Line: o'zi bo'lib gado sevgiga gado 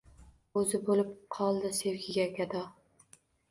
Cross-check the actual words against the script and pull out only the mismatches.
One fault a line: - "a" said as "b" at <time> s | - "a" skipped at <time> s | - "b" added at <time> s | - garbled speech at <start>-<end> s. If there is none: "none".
- "gado" said as "qoldi" at 1.4 s